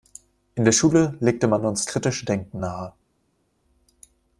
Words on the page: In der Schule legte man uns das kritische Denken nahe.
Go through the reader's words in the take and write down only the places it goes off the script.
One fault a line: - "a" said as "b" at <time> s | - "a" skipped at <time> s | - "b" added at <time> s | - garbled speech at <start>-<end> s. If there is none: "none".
- "das" skipped at 1.9 s